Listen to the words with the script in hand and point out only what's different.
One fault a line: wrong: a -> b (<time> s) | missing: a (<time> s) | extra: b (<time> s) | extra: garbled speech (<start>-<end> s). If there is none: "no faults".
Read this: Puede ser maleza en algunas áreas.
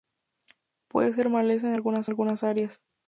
extra: algunas (2.1 s)